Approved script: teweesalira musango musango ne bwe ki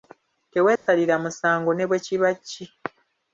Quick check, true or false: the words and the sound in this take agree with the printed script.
false